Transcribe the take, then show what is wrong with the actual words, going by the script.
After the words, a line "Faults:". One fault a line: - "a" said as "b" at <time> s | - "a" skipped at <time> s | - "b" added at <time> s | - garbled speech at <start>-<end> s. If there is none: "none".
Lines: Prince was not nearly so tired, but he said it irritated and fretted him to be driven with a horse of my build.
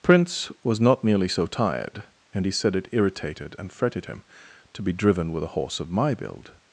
Prince was not nearly so tired, and he said it irritated and fretted him to be driven with a horse of my build.
Faults:
- "but" said as "and" at 2.3 s